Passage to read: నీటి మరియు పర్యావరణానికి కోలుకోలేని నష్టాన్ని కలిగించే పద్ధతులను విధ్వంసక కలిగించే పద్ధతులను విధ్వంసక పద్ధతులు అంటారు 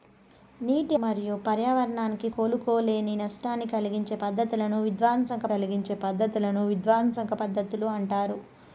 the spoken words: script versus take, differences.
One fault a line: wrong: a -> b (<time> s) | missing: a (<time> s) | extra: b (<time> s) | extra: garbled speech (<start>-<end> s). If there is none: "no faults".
no faults